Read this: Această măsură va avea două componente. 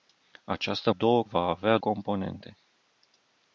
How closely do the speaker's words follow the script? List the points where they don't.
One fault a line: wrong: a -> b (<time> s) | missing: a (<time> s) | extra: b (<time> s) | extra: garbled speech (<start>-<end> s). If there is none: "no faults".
wrong: măsură -> două (0.9 s)
missing: două (1.8 s)